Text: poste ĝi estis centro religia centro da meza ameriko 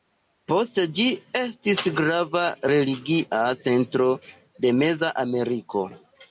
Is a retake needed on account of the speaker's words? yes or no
yes